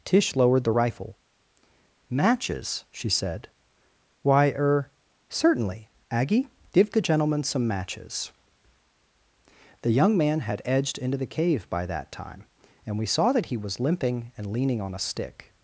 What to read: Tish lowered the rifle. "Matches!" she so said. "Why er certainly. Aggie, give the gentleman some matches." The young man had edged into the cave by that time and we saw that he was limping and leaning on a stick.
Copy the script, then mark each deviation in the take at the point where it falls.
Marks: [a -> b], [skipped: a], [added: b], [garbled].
Tish lowered the rifle. "Matches!" she [skipped: so] said. "Why er certainly. Aggie, give the gentleman some matches." The young man had edged into the cave by that time and we saw that he was limping and leaning on a stick.